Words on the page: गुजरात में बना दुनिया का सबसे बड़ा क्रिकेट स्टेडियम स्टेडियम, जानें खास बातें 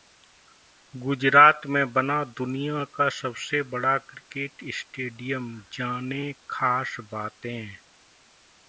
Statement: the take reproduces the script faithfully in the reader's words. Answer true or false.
false